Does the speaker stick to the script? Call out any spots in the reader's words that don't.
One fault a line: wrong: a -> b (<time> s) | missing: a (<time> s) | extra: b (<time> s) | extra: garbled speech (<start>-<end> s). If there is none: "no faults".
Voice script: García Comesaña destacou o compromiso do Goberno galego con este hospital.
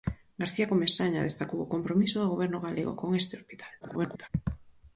extra: garbled speech (3.8-4.3 s)